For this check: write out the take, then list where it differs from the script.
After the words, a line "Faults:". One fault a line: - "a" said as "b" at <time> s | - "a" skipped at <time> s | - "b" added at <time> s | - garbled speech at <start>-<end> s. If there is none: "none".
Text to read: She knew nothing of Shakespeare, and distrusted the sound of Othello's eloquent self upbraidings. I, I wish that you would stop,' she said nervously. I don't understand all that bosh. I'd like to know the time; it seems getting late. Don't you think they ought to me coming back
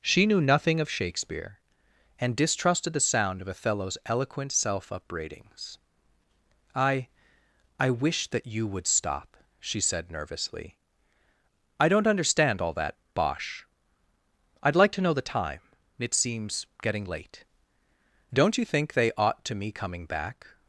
She knew nothing of Shakespeare, and distrusted the sound of Othello's eloquent self upbraidings. I, I wish that you would stop,' she said nervously. I don't understand all that bosh. I'd like to know the time; it seems getting late. Don't you think they ought to me coming back
Faults:
none